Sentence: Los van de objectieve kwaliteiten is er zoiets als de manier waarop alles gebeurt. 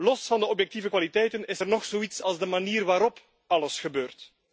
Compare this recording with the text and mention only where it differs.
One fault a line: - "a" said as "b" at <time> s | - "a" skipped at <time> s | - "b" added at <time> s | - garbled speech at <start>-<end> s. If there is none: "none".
- "nog" added at 1.7 s